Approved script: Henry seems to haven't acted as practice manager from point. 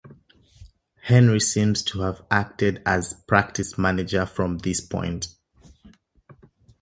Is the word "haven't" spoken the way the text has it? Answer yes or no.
no